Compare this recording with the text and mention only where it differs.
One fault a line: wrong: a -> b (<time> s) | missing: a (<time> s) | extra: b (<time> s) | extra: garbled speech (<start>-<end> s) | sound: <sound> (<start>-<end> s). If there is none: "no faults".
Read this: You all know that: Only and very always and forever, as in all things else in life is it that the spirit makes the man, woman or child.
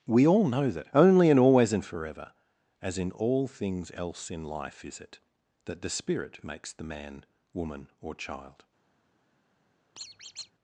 wrong: You -> We (0.1 s)
missing: very (1.4 s)
sound: squeak (10.0-10.5 s)